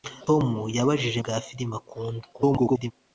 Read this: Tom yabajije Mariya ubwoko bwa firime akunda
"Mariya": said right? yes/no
no